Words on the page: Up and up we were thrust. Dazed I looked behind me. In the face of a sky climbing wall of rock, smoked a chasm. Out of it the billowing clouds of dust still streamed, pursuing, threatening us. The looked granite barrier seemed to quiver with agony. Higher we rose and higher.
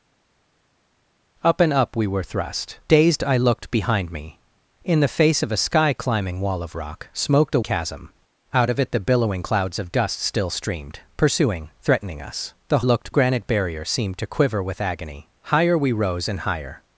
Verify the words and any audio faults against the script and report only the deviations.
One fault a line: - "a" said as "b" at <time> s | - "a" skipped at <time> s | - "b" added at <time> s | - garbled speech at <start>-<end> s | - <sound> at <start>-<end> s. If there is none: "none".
none